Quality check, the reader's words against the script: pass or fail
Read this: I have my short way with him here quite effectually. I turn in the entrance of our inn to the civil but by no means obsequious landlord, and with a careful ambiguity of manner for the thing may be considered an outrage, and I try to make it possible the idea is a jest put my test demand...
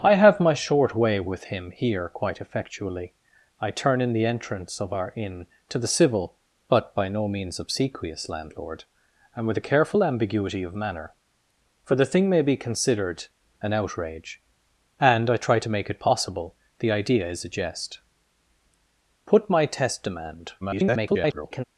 fail